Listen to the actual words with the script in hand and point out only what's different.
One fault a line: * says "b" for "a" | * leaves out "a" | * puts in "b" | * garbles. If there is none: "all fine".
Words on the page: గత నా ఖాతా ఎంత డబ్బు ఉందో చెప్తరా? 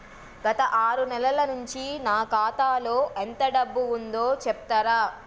* puts in "ఆరు నెలల నుంచి"
* puts in "లో"